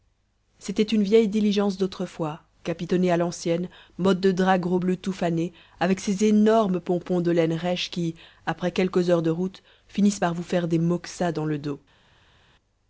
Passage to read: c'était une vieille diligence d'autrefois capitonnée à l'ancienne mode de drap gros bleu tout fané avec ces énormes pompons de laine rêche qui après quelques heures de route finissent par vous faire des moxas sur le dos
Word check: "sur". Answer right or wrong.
wrong